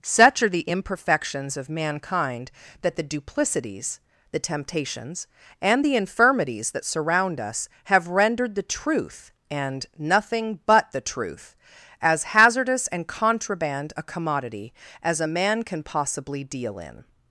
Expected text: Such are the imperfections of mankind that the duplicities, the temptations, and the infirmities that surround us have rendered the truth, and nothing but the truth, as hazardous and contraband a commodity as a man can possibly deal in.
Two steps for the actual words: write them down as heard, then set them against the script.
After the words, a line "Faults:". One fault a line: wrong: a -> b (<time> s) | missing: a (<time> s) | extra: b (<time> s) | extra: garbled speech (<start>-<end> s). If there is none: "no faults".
Such are the imperfections of mankind that the duplicities, the temptations, and the infirmities that surround us have rendered the truth, and nothing but the truth, as hazardous and contraband a commodity as a man can possibly deal in.
Faults:
no faults